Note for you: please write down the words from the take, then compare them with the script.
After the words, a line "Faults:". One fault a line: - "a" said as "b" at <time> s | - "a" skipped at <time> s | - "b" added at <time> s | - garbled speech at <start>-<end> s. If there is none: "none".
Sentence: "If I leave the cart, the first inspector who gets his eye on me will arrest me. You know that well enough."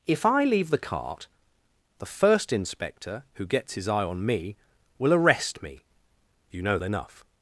"If I leave the cart, the first inspector who gets his eye on me will arrest me. You know enough."
Faults:
- "that well" skipped at 6.8 s